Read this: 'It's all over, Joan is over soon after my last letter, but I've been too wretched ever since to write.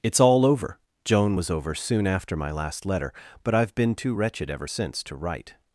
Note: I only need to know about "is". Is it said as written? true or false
false